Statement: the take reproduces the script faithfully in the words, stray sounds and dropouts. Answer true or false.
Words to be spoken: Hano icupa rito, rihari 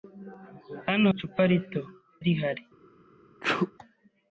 false